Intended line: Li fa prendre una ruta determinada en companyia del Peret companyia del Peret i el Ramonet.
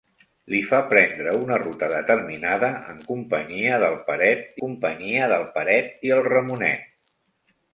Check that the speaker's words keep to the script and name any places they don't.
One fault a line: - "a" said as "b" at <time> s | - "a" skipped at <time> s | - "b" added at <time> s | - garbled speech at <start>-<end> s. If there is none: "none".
none